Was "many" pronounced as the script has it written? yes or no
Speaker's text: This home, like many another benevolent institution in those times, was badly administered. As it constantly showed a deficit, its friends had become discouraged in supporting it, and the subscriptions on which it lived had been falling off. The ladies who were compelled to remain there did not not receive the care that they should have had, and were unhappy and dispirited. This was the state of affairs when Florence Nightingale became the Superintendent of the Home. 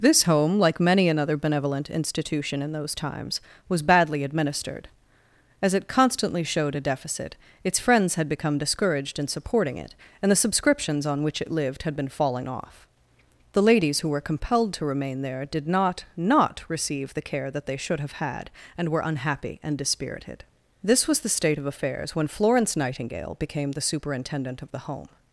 yes